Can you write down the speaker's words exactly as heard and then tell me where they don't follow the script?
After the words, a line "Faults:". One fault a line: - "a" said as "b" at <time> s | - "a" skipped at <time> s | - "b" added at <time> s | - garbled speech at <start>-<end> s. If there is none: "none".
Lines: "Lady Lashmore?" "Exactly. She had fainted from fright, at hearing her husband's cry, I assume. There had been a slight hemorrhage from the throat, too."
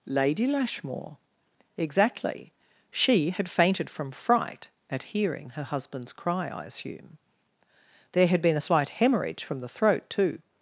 "Lady Lashmore?" "Exactly. She had fainted from fright, at hearing her husband's cry, I assume. There had been a slight hemorrhage from the throat, too."
Faults:
none